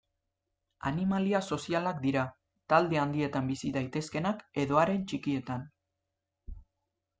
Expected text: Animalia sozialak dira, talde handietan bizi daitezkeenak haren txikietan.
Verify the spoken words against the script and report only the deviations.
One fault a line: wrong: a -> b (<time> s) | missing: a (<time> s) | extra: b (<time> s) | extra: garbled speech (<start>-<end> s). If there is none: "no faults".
extra: edo (4.7 s)